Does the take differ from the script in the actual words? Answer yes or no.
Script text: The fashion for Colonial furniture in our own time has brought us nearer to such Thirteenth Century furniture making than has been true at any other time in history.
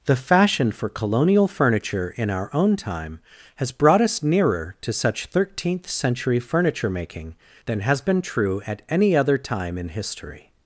no